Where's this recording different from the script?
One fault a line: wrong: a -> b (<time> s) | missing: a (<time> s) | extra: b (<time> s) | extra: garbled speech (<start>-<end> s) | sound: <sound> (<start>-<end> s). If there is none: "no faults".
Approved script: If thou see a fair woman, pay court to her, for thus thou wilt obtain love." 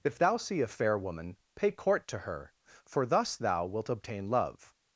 no faults